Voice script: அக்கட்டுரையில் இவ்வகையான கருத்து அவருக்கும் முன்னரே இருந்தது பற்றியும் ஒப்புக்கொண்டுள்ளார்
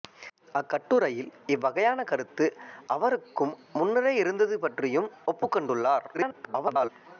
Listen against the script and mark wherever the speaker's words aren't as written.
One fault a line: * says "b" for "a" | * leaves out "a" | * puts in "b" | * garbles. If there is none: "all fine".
* garbles